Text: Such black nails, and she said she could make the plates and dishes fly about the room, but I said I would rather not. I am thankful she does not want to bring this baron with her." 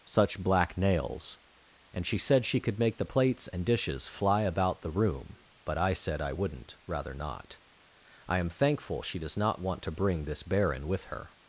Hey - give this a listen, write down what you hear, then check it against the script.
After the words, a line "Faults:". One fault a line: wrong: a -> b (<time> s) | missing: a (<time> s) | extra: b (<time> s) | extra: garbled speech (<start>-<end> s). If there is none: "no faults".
Such black nails, and she said she could make the plates and dishes fly about the room, but I said I wouldn't rather not. I am thankful she does not want to bring this baron with her."
Faults:
wrong: would -> wouldn't (6.3 s)